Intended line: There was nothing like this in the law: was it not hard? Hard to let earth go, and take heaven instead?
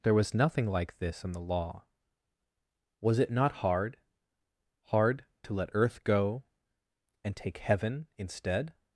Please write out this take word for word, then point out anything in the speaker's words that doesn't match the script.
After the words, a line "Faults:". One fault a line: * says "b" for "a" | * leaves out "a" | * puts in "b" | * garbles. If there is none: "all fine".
There was nothing like this in the law: was it not hard? Hard to let earth go, and take heaven instead?
Faults:
all fine